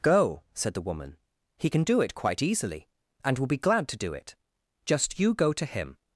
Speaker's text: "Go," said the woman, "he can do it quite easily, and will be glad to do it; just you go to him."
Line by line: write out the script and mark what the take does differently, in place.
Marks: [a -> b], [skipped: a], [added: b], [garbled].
"Go," said the woman, "he can do it quite easily, and will be glad to do it; just you go to him."